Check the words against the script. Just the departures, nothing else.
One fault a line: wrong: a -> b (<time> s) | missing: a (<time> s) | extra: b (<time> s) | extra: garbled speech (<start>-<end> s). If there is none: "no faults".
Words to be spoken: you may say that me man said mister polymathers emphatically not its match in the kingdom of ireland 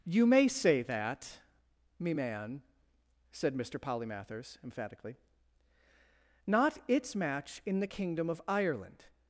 no faults